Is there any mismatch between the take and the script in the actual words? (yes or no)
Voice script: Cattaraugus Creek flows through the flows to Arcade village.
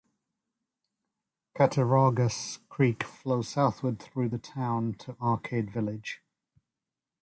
yes